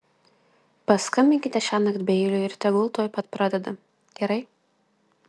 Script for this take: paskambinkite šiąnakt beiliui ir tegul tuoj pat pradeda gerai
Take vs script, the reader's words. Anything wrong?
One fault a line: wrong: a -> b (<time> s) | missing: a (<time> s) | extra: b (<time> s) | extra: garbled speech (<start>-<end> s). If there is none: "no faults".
no faults